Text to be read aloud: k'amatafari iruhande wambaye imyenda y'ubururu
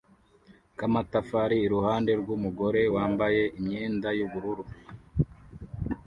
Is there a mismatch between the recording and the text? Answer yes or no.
yes